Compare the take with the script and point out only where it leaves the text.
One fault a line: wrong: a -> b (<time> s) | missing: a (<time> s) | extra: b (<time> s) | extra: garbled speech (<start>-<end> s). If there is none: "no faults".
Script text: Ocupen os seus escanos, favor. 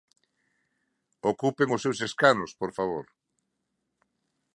extra: por (2.6 s)